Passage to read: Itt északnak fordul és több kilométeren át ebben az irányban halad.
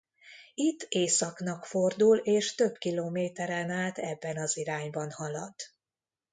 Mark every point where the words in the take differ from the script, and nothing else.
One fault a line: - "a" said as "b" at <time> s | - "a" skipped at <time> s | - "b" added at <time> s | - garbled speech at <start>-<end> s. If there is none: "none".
none